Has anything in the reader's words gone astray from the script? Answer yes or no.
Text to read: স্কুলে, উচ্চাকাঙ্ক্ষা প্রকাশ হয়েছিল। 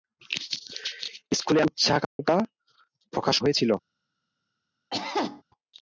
no